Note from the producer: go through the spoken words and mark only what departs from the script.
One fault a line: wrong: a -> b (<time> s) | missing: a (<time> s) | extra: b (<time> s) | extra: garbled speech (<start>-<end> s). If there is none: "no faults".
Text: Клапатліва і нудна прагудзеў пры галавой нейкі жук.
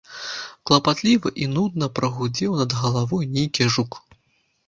wrong: пры -> над (2.6 s)